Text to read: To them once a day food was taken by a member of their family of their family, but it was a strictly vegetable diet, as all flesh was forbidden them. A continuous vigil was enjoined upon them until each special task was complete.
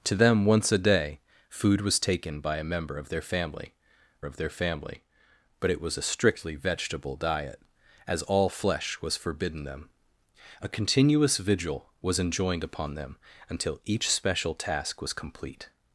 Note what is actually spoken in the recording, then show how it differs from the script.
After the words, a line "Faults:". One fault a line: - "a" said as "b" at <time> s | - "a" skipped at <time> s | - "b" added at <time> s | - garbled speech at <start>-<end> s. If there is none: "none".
To them once a day food was taken by a member of their family of their family, but it was a strictly vegetable diet, as all flesh was forbidden them. A continuous vigil was enjoined upon them until each special task was complete.
Faults:
none